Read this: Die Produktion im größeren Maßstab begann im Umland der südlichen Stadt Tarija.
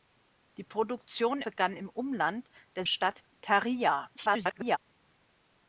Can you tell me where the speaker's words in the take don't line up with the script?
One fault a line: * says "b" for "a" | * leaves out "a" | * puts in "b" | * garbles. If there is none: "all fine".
* leaves out "im größeren Maßstab"
* leaves out "südlichen"
* garbles